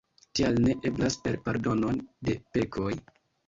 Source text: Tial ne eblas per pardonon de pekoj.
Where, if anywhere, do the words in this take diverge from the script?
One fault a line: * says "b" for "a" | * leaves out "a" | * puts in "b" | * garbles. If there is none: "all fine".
all fine